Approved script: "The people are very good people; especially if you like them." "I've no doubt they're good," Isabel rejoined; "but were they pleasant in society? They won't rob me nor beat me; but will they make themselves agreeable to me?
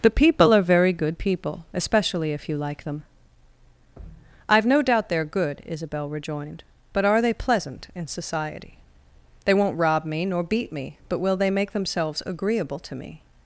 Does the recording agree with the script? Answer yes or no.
no